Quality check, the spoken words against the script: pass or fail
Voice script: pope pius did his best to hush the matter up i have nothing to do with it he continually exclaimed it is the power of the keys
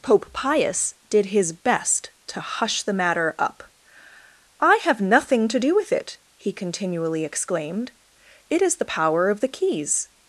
pass